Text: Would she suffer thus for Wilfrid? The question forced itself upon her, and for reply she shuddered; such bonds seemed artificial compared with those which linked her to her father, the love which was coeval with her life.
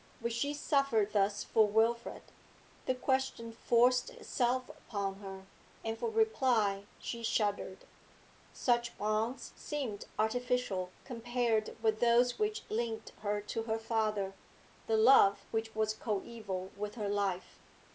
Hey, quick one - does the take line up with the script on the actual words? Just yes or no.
yes